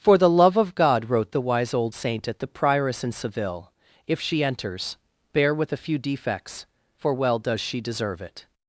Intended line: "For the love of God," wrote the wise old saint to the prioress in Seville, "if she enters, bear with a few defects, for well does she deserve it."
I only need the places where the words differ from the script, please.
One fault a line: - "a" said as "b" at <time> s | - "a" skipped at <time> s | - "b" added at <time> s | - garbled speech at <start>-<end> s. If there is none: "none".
- "to" said as "at" at 2.3 s